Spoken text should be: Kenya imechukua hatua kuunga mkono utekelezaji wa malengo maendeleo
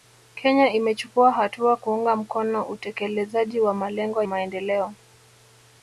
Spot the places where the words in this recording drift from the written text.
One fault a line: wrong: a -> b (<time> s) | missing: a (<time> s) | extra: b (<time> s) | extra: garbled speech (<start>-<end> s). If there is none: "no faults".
no faults